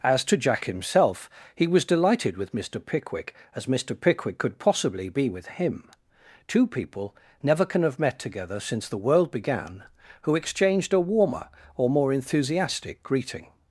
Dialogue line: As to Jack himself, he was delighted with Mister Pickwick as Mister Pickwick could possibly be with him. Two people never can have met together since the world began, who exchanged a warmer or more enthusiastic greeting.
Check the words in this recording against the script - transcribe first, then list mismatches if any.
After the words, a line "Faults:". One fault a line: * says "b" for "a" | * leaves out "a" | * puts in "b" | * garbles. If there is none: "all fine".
As to Jack himself, he was delighted with Mister Pickwick as Mister Pickwick could possibly be with him. Two people never can have met together since the world began, who exchanged a warmer or more enthusiastic greeting.
Faults:
all fine